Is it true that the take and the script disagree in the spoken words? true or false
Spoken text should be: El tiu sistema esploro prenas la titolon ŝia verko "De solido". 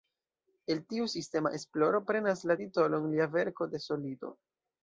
true